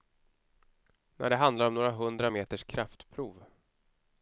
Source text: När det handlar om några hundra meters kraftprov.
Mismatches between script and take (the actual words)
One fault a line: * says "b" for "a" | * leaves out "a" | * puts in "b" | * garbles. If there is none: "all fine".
all fine